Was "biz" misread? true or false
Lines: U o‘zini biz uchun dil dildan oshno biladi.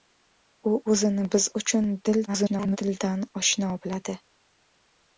false